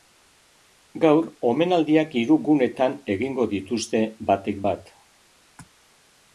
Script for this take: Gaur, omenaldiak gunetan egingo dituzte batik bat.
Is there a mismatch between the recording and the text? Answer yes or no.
yes